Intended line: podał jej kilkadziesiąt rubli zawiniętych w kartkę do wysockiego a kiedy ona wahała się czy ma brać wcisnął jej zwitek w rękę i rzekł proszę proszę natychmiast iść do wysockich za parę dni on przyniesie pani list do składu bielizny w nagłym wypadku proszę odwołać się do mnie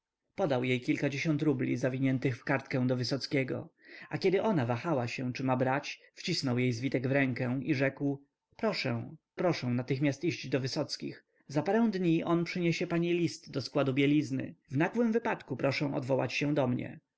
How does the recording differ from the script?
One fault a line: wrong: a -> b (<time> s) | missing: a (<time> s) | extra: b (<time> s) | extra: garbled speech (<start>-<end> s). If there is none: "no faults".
no faults